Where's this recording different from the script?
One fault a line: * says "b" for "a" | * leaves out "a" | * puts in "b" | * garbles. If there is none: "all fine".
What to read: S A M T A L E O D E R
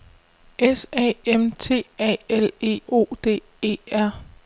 all fine